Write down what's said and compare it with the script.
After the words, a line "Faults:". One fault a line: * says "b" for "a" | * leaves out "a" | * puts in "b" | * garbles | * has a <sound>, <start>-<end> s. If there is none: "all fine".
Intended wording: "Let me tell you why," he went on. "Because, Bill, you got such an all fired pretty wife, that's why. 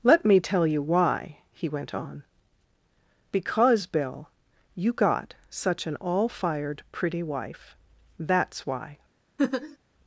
"Let me tell you why," he went on. "Because, Bill, you got such an all fired pretty wife, that's why.
Faults:
* has a laugh, 9.4-9.8 s